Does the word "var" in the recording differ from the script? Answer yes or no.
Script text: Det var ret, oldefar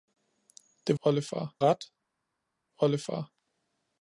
yes